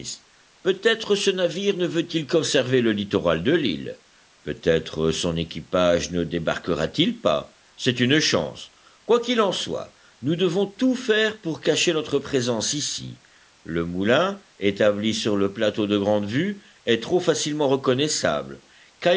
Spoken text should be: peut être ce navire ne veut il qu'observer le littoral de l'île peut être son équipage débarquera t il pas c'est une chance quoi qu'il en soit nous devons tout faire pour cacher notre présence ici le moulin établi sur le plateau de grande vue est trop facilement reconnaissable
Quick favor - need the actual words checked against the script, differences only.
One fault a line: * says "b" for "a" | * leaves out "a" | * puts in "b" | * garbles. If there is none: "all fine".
* puts in "ne"